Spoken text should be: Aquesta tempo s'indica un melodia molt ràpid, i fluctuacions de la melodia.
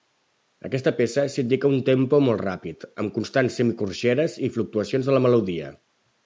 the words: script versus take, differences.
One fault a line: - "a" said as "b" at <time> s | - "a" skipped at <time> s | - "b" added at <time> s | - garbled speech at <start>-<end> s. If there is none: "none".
- "tempo" said as "peça" at 1.0 s
- "melodia" said as "tempo" at 1.9 s
- "amb constants semicorxeres" added at 3.0 s